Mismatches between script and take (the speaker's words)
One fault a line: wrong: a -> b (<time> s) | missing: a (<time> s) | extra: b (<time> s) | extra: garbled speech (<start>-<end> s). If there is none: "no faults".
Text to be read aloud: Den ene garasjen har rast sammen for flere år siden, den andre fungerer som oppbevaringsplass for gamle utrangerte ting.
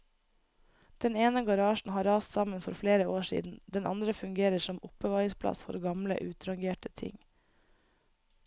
no faults